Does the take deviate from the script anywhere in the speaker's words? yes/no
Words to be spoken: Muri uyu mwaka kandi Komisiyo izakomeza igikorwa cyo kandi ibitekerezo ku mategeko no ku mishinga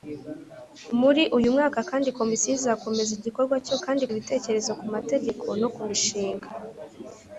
no